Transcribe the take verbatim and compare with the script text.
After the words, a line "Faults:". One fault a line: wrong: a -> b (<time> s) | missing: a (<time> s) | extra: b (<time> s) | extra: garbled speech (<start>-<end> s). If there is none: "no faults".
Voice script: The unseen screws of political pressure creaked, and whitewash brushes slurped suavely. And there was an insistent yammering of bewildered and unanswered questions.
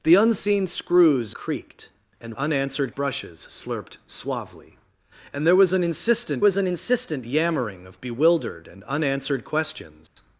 The unseen screws creaked, and unanswered brushes slurped suavely. And there was an insistent was an insistent yammering of bewildered and unanswered questions.
Faults:
missing: of political pressure (1.4 s)
wrong: whitewash -> unanswered (2.3 s)
extra: was an insistent (6.4 s)